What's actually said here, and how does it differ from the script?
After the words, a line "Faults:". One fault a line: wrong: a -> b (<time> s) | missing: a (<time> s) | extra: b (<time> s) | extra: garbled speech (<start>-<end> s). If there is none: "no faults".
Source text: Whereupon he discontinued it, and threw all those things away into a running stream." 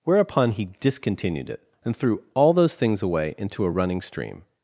Whereupon he discontinued it, and threw all those things away into a running stream."
Faults:
no faults